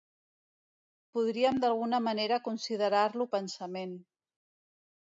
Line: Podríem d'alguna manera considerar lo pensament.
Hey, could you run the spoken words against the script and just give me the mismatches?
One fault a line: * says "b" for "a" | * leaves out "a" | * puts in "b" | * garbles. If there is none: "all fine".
all fine